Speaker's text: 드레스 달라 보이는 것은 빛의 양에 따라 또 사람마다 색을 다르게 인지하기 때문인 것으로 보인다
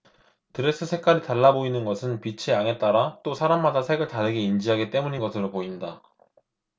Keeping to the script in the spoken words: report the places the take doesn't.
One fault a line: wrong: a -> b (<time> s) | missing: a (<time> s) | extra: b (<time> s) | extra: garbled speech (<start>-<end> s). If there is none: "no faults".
extra: 색깔이 (0.8 s)